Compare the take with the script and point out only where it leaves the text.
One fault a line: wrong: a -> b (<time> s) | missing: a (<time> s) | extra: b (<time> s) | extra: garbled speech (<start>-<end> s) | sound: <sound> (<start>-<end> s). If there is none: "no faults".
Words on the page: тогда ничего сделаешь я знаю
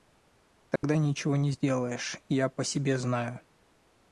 sound: dropout (0.8-0.8 s)
extra: не (1.4 s)
extra: по себе (2.5 s)